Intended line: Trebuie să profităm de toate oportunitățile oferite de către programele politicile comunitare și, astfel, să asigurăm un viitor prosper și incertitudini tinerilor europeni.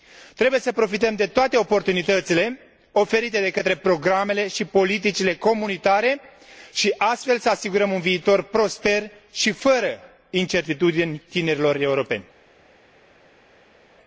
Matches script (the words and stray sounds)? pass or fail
fail